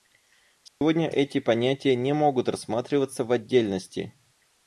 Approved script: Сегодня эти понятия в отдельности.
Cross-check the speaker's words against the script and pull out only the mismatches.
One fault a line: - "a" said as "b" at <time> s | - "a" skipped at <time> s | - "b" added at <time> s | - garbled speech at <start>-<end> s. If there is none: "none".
- "не могут рассматриваться" added at 1.9 s